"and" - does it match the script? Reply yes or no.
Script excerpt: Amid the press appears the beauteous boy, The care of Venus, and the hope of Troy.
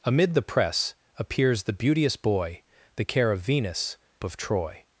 no